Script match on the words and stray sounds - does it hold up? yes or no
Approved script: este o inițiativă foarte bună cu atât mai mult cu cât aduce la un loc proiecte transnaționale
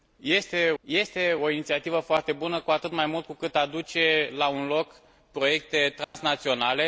no